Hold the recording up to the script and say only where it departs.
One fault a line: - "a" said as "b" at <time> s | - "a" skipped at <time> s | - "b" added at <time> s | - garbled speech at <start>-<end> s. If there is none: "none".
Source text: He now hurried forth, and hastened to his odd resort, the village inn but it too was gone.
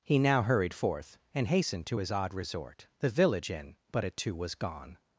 none